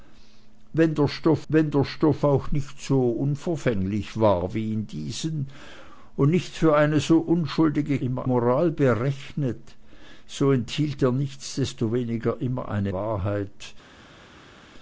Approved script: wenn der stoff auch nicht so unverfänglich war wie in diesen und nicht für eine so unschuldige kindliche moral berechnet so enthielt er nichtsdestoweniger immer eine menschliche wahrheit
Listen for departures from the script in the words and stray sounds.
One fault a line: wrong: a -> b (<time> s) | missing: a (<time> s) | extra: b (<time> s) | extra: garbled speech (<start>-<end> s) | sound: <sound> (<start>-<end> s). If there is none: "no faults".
extra: wenn der stoff (1.5 s)
wrong: kindliche -> immer (8.0 s)
missing: menschliche (12.9 s)